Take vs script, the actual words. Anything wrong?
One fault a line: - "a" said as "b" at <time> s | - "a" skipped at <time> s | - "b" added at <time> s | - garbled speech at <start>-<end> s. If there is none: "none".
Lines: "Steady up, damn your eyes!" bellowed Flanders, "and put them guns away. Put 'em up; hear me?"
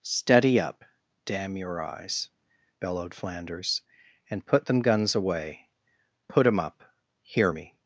none